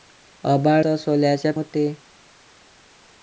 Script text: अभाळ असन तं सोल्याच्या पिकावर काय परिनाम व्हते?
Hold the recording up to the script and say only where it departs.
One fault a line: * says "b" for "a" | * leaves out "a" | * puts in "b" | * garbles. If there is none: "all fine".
* leaves out "असन"
* leaves out "पिकावर काय परिनाम"